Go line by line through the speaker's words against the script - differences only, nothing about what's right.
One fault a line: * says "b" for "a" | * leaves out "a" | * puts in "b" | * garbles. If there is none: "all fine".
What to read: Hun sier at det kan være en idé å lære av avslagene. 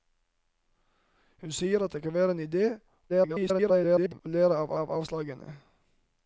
* garbles
* puts in "av"